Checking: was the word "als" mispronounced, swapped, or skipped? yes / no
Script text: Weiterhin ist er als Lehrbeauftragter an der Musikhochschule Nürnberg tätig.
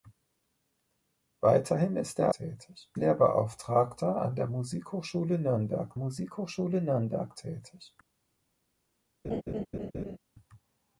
yes